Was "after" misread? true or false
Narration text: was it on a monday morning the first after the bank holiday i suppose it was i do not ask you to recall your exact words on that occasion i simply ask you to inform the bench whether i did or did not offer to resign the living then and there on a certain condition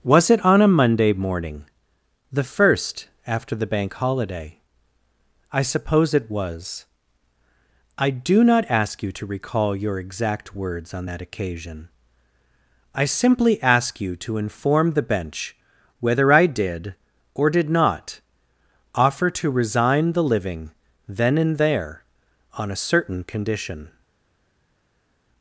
false